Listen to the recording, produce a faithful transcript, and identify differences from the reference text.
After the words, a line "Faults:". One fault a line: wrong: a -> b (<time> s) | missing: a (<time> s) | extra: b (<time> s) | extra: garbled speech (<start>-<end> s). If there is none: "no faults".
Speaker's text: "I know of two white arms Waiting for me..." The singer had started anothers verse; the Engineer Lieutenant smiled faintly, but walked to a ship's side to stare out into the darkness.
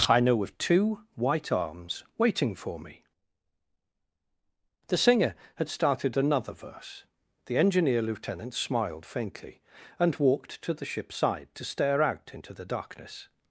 "I know of two white arms Waiting for me..." The singer had started another verse; the Engineer Lieutenant smiled faintly, and walked to the ship's side to stare out into the darkness.
Faults:
wrong: anothers -> another (6.2 s)
wrong: but -> and (10.0 s)
wrong: a -> the (10.7 s)